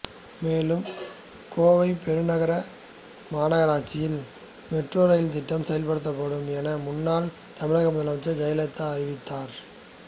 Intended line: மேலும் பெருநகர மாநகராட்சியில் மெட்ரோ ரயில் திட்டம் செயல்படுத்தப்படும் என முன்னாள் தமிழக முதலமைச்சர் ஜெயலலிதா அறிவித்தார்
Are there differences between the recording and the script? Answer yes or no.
yes